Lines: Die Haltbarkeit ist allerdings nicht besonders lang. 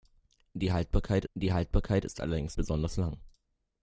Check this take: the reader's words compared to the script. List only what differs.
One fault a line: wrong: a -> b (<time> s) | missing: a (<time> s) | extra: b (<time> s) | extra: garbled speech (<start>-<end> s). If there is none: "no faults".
extra: die Haltbarkeit (1.3 s)
missing: nicht (2.6 s)